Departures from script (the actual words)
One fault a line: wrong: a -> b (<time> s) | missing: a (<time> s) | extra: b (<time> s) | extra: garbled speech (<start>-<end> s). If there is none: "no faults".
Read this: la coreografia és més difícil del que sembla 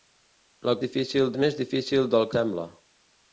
wrong: coreografia -> difícil (0.9 s)
missing: que (2.3 s)